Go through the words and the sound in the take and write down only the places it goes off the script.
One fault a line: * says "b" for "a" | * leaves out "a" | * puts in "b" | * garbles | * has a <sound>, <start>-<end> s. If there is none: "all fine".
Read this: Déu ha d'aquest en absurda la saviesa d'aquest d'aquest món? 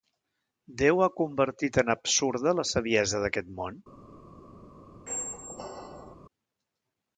* says "convertit" for "d'aquest"
* leaves out "d'aquest"
* has a squeak, 5.1-6.2 s